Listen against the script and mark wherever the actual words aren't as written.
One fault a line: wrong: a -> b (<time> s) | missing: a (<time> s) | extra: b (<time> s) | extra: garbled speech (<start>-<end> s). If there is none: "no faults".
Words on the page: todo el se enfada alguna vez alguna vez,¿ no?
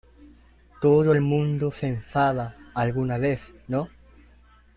extra: mundo (1.2 s)
missing: alguna vez (3.4 s)